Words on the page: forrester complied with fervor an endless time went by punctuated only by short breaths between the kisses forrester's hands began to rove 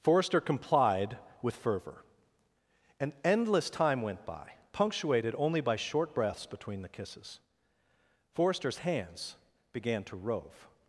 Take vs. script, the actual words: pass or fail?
pass